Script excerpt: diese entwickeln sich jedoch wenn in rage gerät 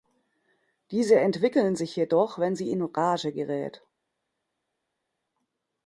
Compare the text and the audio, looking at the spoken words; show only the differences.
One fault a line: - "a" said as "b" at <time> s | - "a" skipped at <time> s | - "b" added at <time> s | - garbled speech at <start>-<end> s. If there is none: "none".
- "sie" added at 2.6 s